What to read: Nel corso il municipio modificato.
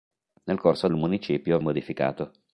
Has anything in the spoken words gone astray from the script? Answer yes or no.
no